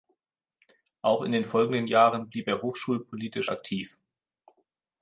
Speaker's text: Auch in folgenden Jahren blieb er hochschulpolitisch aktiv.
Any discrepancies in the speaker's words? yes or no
yes